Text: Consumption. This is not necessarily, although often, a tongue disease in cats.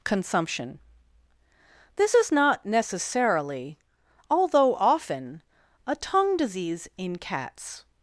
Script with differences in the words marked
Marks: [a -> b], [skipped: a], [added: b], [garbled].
Consumption. This is not necessarily, although often, a tongue disease in cats.